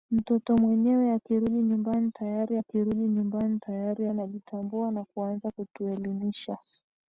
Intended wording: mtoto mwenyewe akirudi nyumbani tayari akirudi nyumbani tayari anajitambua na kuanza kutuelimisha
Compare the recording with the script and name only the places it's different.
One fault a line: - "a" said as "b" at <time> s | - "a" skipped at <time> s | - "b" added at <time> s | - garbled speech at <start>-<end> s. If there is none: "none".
none